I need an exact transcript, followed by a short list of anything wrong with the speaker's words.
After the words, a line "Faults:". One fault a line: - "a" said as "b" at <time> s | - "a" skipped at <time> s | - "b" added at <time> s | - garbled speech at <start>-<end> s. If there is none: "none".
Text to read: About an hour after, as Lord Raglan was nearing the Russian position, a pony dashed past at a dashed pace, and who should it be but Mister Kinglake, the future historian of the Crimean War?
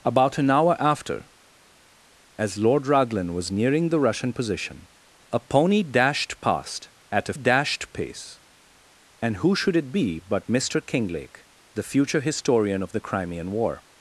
About an hour after, as Lord Raglan was nearing the Russian position, a pony dashed past at a dashed pace, and who should it be but Mister Kinglake, the future historian of the Crimean War?
Faults:
none